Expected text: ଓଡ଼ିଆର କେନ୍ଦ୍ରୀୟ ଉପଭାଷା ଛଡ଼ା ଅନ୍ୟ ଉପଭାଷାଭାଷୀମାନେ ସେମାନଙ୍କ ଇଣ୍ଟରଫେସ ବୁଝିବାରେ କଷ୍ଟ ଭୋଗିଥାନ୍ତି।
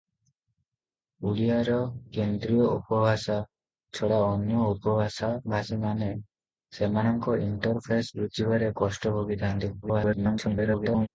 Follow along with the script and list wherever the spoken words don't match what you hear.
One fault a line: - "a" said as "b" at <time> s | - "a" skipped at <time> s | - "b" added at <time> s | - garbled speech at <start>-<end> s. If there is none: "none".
- garbled speech at 9.8-11.1 s